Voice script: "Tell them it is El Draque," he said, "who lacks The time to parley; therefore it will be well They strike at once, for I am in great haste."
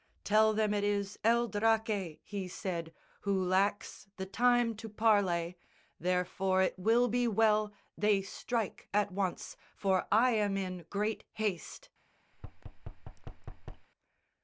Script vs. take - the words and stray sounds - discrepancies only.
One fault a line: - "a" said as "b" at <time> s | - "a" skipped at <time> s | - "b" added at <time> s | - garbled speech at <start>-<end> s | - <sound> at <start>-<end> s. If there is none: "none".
- thud at 12.3-13.9 s